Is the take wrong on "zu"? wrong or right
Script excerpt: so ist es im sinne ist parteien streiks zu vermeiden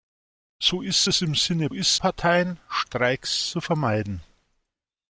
right